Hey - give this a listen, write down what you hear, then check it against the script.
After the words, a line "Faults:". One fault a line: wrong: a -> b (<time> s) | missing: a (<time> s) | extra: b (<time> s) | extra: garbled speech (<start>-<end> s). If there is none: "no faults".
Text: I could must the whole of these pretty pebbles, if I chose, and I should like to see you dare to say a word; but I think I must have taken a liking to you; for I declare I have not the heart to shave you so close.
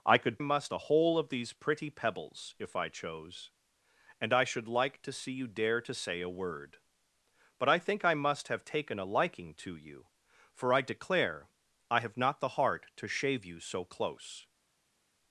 I could must the whole of these pretty pebbles, if I chose, and I should like to see you dare to say a word; but I think I must have taken a liking to you; for I declare I have not the heart to shave you so close.
Faults:
no faults